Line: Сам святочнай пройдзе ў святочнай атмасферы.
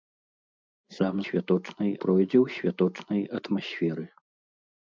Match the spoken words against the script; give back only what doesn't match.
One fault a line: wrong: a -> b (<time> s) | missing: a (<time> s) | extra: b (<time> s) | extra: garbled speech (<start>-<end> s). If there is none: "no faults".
no faults